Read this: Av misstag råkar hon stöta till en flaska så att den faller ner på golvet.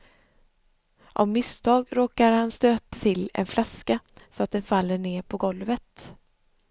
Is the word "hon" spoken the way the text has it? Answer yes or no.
no